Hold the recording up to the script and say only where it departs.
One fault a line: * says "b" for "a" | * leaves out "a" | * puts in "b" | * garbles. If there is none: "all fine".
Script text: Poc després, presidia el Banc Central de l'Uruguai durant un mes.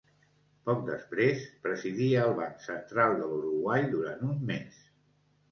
all fine